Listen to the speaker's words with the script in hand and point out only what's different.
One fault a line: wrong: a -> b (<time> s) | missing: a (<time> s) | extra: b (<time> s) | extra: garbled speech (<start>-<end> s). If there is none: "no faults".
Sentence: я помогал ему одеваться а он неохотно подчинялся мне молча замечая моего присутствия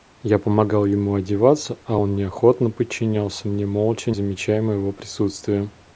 no faults